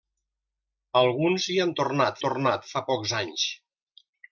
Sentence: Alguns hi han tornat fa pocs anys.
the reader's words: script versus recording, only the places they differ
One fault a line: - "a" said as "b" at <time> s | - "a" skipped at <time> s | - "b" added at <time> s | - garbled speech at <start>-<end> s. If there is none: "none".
- "tornat" added at 2.3 s